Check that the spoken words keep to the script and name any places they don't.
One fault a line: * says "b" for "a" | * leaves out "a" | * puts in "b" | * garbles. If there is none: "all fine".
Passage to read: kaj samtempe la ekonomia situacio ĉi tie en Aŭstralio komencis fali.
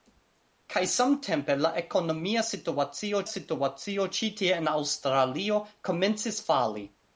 * puts in "situacio"